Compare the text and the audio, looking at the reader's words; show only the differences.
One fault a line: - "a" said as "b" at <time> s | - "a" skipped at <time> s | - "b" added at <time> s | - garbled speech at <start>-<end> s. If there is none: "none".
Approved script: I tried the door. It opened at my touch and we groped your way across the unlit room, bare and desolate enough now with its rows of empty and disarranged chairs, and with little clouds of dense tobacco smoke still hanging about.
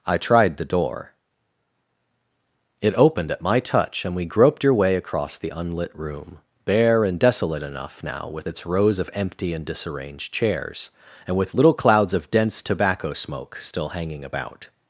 none